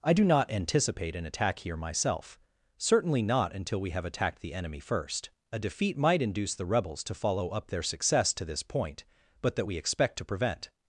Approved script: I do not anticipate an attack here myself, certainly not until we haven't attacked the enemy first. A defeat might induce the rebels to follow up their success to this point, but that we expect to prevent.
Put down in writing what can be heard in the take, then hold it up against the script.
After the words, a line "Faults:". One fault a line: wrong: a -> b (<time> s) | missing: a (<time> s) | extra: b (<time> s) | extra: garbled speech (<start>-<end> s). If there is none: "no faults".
I do not anticipate an attack here myself, certainly not until we have attacked the enemy first. A defeat might induce the rebels to follow up their success to this point, but that we expect to prevent.
Faults:
wrong: haven't -> have (3.9 s)